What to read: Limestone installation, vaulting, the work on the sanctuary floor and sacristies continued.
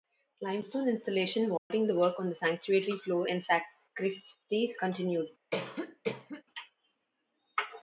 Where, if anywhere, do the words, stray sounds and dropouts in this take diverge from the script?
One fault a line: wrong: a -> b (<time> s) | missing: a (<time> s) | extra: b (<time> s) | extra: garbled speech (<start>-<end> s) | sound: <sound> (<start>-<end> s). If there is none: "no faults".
sound: dropout (1.6-1.7 s)
sound: cough (5.5-6.4 s)